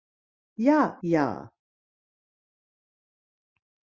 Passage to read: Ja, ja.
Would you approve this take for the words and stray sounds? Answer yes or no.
yes